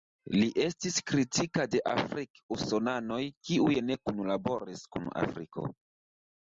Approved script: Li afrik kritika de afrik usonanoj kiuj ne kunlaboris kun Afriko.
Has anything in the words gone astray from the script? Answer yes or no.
yes